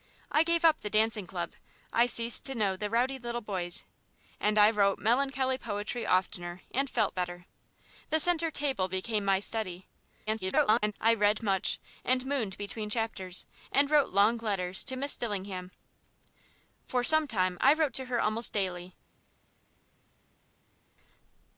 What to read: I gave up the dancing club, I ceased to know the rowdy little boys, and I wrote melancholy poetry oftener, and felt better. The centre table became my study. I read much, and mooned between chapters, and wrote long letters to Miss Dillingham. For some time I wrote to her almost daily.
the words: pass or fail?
fail